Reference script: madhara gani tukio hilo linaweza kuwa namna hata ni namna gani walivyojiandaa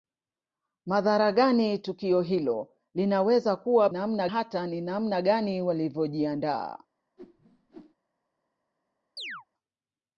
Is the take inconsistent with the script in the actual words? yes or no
no